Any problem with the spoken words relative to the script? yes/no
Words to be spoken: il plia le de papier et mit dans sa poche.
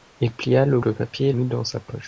no